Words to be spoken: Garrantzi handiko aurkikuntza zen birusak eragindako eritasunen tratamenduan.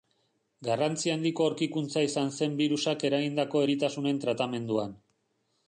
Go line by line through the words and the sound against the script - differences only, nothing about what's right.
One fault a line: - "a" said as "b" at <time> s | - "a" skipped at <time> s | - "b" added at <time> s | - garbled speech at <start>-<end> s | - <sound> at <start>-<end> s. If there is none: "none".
- "izan" added at 2.1 s